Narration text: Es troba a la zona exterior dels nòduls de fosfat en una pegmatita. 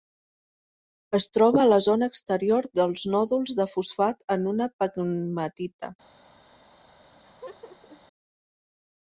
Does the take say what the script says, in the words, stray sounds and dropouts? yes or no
no